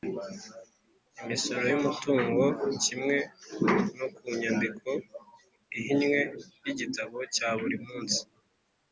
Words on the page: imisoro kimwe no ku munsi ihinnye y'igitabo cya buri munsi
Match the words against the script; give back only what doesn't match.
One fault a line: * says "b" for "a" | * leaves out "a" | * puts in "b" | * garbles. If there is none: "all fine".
* puts in "y'umutungo"
* says "nyandiko" for "munsi"